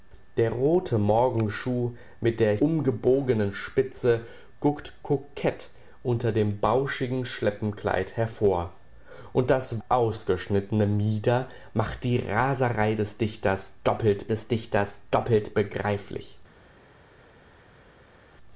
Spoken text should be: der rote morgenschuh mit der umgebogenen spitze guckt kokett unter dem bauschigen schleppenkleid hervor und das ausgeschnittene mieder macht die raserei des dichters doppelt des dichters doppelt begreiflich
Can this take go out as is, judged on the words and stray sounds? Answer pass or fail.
pass